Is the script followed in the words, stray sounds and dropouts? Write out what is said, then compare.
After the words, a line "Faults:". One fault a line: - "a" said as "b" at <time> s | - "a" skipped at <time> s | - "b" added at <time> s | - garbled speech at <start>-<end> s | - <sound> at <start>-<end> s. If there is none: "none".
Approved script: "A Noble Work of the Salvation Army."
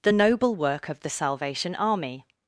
"The Noble Work of the Salvation Army."
Faults:
- "A" said as "The" at 0.0 s